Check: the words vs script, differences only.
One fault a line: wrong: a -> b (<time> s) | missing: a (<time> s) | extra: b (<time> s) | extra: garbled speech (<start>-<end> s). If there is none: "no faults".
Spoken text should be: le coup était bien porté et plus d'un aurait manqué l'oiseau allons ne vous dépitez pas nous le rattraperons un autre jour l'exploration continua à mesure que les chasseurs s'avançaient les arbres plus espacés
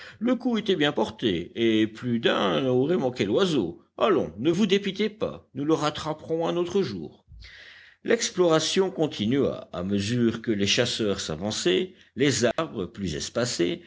no faults